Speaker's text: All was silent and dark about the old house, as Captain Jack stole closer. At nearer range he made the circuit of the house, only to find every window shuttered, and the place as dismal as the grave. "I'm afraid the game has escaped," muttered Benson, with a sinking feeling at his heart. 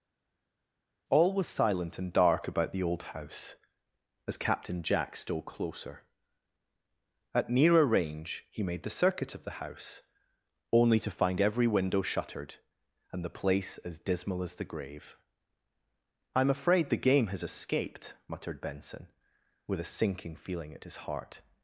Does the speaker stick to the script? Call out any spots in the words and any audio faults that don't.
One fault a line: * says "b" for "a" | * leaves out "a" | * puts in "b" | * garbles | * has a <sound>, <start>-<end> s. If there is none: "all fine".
all fine